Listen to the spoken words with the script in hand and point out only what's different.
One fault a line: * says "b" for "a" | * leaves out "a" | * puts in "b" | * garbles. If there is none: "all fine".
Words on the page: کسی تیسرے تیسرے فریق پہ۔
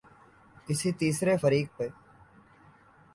* leaves out "تیسرے"